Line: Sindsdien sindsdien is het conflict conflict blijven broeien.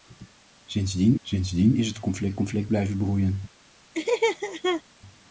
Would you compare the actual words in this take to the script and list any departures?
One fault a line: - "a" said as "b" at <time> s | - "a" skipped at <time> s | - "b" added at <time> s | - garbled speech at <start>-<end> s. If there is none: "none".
none